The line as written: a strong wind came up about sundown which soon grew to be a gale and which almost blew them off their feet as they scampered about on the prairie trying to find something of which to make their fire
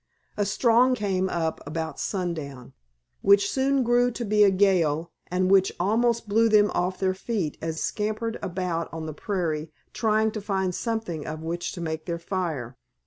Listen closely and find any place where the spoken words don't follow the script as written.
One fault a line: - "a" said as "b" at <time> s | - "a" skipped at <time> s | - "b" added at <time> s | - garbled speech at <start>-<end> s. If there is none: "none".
- "wind" skipped at 1.0 s
- "they" skipped at 7.8 s